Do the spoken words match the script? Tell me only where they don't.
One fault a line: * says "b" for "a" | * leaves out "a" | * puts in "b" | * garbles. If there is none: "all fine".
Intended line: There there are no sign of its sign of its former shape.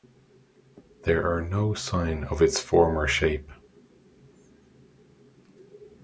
* leaves out "there"
* leaves out "sign of its"